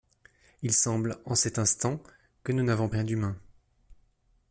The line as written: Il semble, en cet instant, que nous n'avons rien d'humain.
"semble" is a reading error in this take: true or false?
false